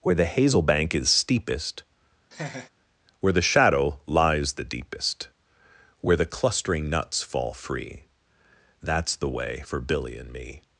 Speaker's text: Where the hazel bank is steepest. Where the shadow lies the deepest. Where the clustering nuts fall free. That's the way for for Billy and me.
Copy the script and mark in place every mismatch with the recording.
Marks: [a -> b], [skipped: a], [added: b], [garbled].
Where the hazel bank is steepest. Where the shadow lies the deepest. Where the clustering nuts fall free. That's the way for [skipped: for] Billy and me.